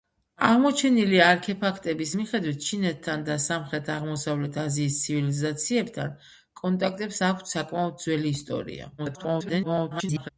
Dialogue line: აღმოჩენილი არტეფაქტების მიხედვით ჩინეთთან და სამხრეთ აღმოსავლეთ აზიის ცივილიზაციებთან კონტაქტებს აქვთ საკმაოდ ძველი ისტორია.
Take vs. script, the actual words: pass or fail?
fail